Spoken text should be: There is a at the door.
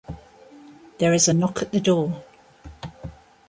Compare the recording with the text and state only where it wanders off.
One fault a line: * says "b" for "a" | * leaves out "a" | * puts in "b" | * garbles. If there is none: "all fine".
* puts in "knock"